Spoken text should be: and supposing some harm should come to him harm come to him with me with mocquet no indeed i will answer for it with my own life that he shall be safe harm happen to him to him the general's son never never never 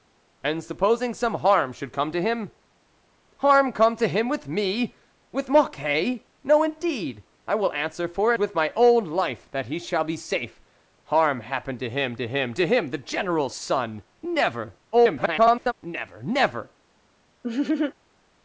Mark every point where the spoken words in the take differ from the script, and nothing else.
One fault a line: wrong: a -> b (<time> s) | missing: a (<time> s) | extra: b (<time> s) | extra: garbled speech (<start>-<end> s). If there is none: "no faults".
missing: it (8.3 s)
extra: to him (12.5 s)
extra: garbled speech (14.9-15.7 s)